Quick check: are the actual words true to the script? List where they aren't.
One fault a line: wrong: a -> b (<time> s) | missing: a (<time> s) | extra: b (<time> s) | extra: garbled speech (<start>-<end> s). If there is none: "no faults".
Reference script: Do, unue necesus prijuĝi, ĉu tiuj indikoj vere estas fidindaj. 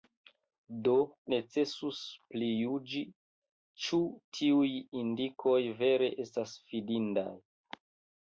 missing: unue (0.9 s)